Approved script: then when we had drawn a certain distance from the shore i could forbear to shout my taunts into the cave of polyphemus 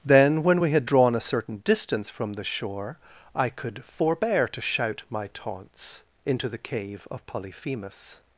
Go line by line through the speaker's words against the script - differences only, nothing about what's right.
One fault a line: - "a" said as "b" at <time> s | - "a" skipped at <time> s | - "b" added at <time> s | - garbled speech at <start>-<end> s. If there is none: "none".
none